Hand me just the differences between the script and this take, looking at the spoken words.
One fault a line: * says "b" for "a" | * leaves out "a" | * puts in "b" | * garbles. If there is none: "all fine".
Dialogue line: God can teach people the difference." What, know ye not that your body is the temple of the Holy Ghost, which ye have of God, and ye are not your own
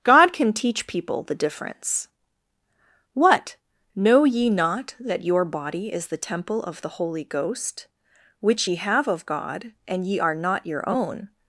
all fine